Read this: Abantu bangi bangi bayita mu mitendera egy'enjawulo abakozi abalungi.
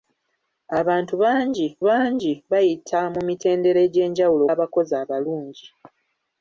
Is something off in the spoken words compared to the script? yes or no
no